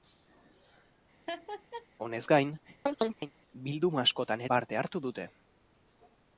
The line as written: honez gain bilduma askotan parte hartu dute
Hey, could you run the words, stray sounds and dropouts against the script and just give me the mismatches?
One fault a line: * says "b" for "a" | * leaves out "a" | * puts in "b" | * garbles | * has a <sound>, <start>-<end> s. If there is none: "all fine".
* has a laugh, 1.3-1.9 s
* has a chirp, 2.9-3.3 s